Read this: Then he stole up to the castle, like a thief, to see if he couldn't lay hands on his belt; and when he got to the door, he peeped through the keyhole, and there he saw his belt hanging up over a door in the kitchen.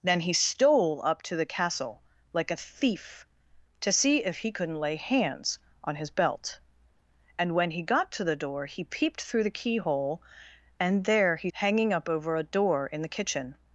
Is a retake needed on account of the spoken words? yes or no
yes